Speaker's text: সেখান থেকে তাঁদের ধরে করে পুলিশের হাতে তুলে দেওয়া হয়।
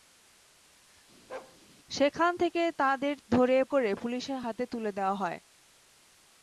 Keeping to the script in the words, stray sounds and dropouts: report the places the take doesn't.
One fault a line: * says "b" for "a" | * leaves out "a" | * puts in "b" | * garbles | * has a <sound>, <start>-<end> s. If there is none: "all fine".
* has a bark, 1.3-1.6 s